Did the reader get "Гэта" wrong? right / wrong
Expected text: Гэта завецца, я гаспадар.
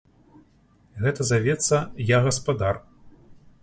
right